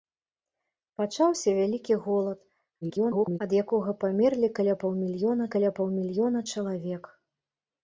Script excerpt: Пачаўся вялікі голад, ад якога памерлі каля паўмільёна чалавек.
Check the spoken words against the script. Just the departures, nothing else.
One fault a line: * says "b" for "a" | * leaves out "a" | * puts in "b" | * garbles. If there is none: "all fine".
* garbles
* puts in "каля паўмільёна"